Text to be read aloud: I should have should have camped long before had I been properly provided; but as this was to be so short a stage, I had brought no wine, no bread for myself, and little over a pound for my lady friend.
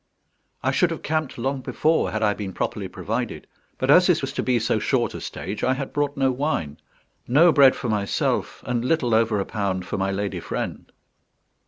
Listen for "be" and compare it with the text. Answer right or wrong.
right